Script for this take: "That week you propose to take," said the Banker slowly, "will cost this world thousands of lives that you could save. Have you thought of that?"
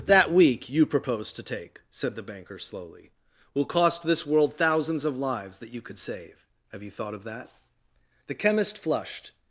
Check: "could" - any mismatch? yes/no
no